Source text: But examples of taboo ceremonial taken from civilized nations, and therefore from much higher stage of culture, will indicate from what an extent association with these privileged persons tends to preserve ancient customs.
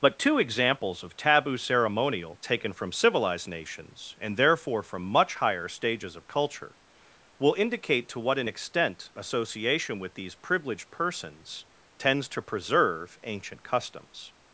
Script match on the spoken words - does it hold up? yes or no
no